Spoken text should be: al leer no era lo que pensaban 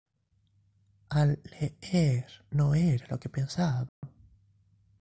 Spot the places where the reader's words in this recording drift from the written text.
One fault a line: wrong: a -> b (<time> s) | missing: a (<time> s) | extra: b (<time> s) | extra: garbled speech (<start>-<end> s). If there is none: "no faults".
no faults